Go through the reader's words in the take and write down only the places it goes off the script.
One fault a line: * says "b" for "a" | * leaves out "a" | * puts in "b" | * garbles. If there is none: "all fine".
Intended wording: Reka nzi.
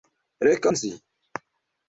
all fine